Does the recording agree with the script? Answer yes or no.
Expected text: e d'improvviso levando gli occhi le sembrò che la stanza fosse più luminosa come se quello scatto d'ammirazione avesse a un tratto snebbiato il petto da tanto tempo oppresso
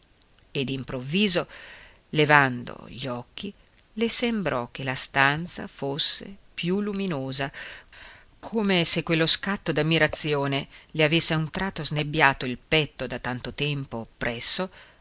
no